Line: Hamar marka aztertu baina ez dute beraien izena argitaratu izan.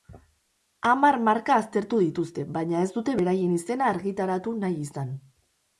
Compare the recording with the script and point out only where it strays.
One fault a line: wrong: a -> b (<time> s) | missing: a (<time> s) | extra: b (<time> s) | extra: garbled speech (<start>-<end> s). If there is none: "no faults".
extra: dituzte (2.0 s)
extra: nahi (4.7 s)